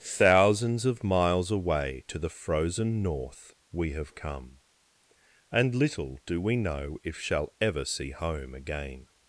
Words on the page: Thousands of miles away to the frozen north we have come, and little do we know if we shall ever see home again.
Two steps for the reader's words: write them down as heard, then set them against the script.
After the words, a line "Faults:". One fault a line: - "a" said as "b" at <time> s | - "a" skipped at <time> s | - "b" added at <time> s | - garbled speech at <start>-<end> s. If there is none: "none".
Thousands of miles away to the frozen north we have come, and little do we know if shall ever see home again.
Faults:
- "we" skipped at 7.2 s